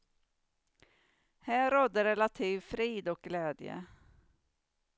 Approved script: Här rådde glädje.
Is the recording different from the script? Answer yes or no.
yes